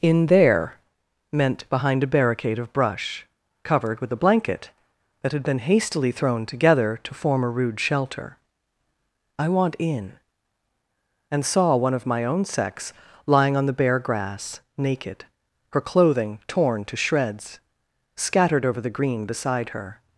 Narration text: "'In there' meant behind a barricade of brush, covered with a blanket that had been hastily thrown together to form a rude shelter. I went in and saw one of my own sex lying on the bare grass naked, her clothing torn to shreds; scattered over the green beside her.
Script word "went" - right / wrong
wrong